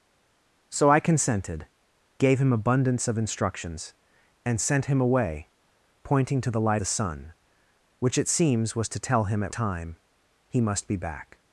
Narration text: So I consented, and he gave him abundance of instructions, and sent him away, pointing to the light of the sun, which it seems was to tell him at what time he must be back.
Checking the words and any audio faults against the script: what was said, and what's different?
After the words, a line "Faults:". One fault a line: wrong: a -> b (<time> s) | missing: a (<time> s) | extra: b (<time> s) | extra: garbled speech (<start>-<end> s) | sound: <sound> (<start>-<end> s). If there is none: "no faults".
So I consented, gave him abundance of instructions, and sent him away, pointing to the light the sun, which it seems was to tell him at time he must be back.
Faults:
missing: and he (1.7 s)
missing: of (6.8 s)
missing: what (9.5 s)